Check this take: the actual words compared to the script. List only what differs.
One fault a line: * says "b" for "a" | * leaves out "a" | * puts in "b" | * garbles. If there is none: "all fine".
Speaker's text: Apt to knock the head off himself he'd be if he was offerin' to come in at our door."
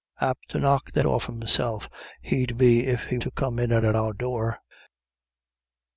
* leaves out "head"
* leaves out "was offerin"
* puts in "at"